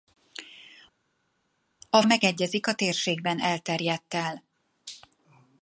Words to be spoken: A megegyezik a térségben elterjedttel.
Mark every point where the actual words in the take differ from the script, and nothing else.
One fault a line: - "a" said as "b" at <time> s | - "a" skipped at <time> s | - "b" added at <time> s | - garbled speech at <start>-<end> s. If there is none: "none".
none